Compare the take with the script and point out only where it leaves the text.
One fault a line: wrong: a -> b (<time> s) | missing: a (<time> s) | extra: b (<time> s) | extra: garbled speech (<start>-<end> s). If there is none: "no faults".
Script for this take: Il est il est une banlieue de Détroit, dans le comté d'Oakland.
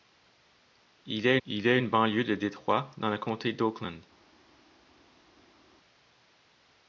no faults